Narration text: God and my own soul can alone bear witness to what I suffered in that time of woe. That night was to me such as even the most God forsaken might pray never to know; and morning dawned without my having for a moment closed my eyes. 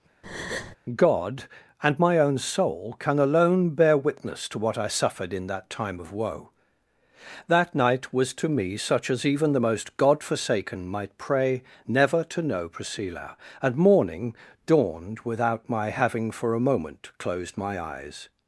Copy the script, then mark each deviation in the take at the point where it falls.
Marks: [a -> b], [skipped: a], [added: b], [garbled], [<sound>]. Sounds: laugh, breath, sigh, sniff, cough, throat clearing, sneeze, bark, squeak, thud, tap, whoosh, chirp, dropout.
[breath] God and my own soul can alone bear witness to what I suffered in that time of woe. That night was to me such as even the most God forsaken might pray never to know; [added: priscilla] and morning dawned without my having for a moment closed my eyes.